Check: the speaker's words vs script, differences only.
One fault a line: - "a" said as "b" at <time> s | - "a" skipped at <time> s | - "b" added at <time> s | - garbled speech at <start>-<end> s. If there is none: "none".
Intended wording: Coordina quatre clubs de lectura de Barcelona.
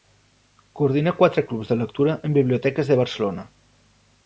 - "en biblioteques" added at 2.3 s